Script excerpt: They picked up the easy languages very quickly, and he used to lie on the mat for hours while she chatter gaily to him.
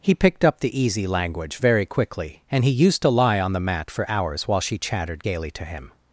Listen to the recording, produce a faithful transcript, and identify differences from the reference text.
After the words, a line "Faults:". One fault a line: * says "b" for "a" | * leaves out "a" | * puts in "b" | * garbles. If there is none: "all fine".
He picked up the easy language very quickly, and he used to lie on the mat for hours while she chattered gaily to him.
Faults:
* says "He" for "They"
* says "language" for "languages"
* says "chattered" for "chatter"